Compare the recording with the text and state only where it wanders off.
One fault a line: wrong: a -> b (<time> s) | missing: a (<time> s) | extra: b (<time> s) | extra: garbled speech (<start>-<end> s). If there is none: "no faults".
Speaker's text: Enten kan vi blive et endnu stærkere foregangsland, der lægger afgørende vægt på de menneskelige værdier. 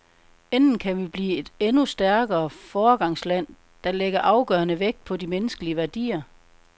no faults